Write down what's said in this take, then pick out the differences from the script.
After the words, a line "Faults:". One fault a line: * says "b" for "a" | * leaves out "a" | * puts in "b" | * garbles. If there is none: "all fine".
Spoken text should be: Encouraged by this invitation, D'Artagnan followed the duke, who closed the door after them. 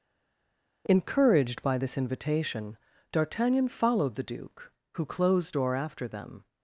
Encouraged by this invitation, D'Artagnan followed the duke, who closed door after them.
Faults:
* leaves out "the"